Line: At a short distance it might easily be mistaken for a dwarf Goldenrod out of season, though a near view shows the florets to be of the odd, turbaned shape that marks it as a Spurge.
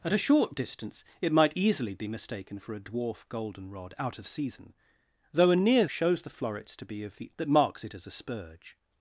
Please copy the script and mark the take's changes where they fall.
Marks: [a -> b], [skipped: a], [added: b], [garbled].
At a short distance it might easily be mistaken for a dwarf Goldenrod out of season, though a near [skipped: view] shows the florets to be of the [skipped: odd, turbaned shape] that marks it as a Spurge.